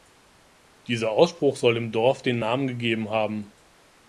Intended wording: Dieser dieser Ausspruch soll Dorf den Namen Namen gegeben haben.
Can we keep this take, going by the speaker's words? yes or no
no